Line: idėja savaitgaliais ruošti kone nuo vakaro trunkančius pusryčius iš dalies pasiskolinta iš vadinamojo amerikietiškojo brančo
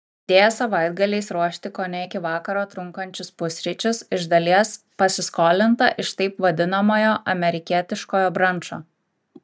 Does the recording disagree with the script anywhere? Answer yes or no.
yes